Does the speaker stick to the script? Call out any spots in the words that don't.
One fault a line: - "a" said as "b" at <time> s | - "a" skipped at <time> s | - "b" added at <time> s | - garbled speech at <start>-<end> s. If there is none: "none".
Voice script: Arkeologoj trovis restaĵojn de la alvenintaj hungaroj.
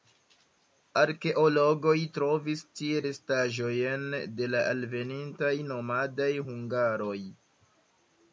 - "tie" added at 2.8 s
- "nomadaj" added at 5.7 s